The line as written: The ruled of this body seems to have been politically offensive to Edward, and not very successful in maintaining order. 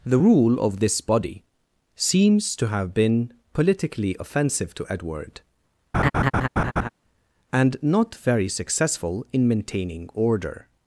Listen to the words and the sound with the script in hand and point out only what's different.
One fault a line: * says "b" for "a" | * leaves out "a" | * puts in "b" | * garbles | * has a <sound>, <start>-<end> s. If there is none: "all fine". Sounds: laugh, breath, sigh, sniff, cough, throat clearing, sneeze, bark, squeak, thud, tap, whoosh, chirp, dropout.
* says "rule" for "ruled"
* has a laugh, 5.9-6.9 s